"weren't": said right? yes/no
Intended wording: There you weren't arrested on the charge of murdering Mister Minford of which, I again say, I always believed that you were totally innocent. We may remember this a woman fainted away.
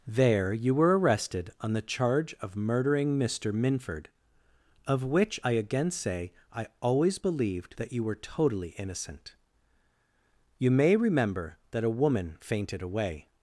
no